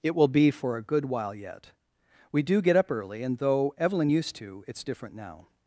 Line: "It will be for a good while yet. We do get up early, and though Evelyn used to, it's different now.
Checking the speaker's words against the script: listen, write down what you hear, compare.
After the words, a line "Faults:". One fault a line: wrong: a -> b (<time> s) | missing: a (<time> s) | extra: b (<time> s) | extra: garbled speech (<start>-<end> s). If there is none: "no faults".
"It will be for a good while yet. We do get up early, and though Evelyn used to, it's different now.
Faults:
no faults